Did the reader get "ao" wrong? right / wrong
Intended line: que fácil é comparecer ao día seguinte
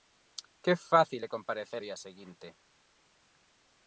wrong